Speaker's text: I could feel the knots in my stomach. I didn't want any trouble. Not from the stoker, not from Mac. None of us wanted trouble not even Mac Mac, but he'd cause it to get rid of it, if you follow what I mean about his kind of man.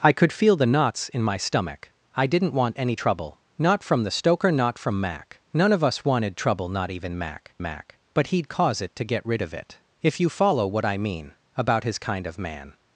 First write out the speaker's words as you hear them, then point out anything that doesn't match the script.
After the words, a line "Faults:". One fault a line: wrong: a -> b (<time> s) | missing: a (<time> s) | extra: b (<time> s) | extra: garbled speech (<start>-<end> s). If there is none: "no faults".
I could feel the knots in my stomach. I didn't want any trouble. Not from the stoker, not from Mac. None of us wanted trouble not even Mac Mac, but he'd cause it to get rid of it, if you follow what I mean about his kind of man.
Faults:
no faults